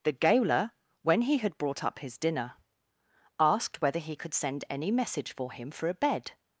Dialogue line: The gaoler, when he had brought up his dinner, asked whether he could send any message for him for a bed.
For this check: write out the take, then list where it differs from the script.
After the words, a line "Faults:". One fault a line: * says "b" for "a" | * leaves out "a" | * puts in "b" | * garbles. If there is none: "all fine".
The gaoler, when he had brought up his dinner, asked whether he could send any message for him for a bed.
Faults:
all fine